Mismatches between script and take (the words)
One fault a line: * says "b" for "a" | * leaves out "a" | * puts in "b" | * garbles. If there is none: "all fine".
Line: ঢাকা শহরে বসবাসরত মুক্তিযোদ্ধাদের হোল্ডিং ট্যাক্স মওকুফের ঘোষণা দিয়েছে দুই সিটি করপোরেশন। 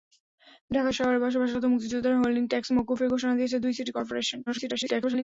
* garbles